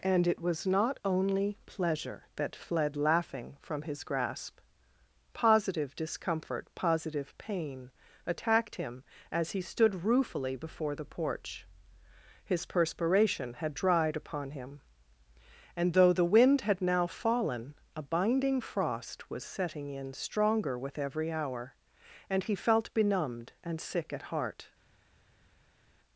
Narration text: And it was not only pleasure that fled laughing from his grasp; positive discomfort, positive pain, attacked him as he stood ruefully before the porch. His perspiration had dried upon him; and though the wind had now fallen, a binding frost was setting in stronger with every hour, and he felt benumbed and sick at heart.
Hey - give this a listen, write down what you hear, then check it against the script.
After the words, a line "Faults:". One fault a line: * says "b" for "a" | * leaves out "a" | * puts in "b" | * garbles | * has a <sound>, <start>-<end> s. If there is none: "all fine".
And it was not only pleasure that fled laughing from his grasp; positive discomfort, positive pain, attacked him as he stood ruefully before the porch. His perspiration had dried upon him; and though the wind had now fallen, a binding frost was setting in stronger with every hour, and he felt benumbed and sick at heart.
Faults:
all fine